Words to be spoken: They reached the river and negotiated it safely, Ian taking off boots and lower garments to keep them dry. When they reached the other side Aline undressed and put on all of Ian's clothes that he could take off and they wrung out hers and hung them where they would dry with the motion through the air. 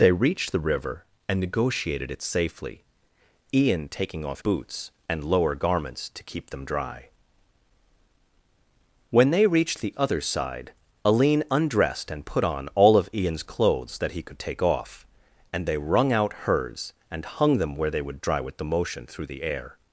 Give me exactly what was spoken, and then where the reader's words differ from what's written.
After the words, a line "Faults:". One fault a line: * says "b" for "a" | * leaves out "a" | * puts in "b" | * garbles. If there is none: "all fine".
They reached the river and negotiated it safely, Ian taking off boots and lower garments to keep them dry. When they reached the other side Aline undressed and put on all of Ian's clothes that he could take off and they wrung out hers and hung them where they would dry with the motion through the air.
Faults:
all fine